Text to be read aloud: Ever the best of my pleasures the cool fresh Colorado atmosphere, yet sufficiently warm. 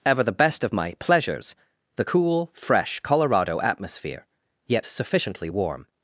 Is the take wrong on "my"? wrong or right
right